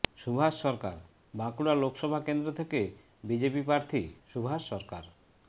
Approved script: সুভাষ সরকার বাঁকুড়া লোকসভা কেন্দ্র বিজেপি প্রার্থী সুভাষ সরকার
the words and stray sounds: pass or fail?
fail